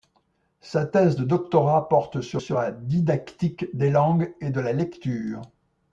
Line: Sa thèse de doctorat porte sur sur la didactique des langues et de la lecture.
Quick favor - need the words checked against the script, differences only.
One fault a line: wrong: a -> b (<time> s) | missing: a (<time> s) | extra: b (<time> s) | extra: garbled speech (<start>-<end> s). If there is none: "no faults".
no faults